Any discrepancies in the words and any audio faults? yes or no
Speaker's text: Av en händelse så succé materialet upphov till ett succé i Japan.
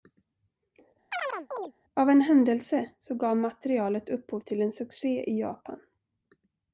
yes